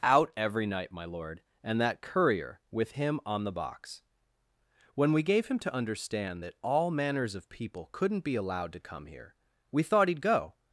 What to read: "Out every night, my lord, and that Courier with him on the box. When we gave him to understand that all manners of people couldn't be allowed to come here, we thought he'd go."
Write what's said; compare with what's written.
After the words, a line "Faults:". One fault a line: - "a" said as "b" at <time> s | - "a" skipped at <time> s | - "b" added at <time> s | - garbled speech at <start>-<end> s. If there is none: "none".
"Out every night, my lord, and that Courier with him on the box. When we gave him to understand that all manners of people couldn't be allowed to come here, we thought he'd go."
Faults:
none